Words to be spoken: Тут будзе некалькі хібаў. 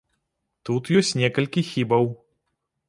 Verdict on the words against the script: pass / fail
fail